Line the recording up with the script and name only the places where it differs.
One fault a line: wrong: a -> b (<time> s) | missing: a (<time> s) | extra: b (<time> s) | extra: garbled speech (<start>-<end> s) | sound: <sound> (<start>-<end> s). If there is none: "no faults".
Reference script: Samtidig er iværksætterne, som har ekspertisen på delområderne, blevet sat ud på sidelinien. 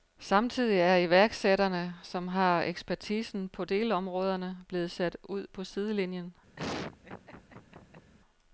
sound: laugh (6.6-8.1 s)